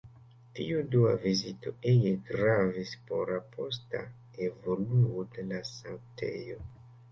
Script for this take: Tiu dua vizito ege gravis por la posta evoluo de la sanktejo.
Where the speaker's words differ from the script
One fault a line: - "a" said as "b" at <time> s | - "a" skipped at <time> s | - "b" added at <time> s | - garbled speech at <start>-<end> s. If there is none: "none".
none